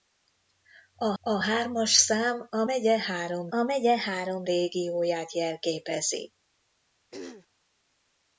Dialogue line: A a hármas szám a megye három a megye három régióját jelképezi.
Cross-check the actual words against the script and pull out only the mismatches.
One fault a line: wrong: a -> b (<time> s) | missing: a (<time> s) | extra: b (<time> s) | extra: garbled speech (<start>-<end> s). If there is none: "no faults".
no faults